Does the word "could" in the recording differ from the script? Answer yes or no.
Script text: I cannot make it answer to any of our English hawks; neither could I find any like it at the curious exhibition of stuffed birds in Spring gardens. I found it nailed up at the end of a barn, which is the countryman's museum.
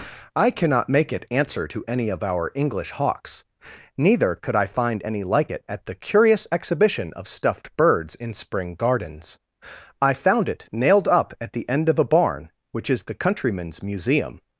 no